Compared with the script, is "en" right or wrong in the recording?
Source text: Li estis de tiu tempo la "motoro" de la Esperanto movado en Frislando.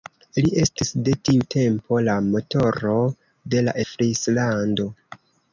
wrong